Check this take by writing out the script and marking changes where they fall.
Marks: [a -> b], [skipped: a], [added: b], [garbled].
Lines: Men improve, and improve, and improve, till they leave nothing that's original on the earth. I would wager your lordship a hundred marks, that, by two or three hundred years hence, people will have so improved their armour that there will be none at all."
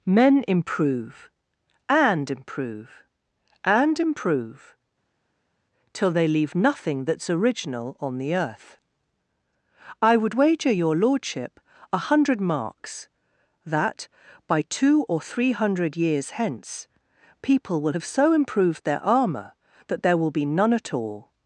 Men improve, and improve, and improve, till they leave nothing that's original on the earth. I would wager your lordship a hundred marks, that, by two or three hundred years hence, people will have so improved their armour that there will be none at all."